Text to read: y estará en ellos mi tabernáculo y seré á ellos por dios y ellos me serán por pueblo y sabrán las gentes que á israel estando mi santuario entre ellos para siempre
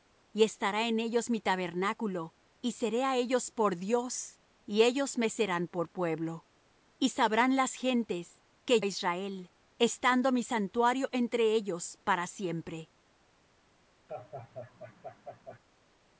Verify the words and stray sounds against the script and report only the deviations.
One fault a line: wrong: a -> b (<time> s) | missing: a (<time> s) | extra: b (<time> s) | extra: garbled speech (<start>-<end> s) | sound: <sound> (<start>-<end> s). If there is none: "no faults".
sound: laugh (14.1-15.6 s)